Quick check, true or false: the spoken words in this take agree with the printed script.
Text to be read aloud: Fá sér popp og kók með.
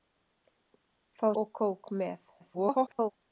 false